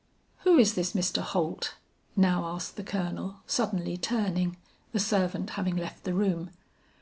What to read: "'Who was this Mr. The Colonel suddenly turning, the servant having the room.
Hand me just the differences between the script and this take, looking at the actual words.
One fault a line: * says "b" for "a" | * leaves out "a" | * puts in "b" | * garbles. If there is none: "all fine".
* says "is" for "was"
* puts in "Holt now asked"
* puts in "left"